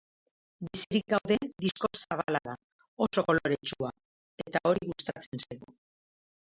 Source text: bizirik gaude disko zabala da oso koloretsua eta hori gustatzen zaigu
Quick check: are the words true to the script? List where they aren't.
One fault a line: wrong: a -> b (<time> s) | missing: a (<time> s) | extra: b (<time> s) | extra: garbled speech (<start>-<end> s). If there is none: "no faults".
no faults